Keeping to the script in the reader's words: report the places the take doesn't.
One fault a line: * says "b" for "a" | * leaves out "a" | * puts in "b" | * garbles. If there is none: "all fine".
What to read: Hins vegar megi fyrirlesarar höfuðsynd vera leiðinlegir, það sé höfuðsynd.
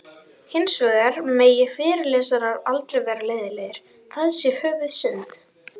* says "aldrei" for "höfuðsynd"